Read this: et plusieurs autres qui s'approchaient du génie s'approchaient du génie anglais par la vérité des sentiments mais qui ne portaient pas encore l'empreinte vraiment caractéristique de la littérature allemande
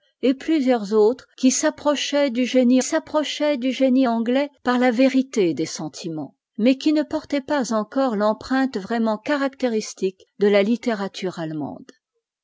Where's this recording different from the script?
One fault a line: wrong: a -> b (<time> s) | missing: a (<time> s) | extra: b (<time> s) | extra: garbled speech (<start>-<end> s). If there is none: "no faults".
no faults